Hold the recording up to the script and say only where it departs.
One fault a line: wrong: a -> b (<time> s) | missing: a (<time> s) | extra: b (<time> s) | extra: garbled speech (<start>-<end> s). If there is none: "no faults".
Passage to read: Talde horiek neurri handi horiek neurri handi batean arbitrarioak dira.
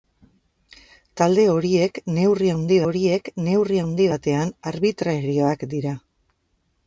no faults